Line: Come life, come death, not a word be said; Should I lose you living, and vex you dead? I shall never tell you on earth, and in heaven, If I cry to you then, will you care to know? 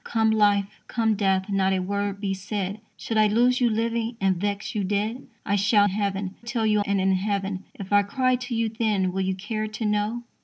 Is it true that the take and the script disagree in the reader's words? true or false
true